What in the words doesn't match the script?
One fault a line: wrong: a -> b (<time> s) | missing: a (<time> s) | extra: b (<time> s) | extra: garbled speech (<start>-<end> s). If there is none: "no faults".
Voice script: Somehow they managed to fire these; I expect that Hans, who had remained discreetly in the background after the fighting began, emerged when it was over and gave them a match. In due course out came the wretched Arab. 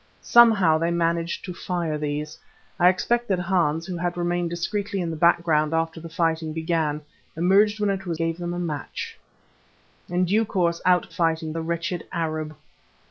missing: over and (8.2 s)
wrong: came -> fighting (11.1 s)